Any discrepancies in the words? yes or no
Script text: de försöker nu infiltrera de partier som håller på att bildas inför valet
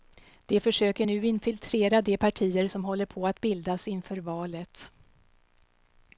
no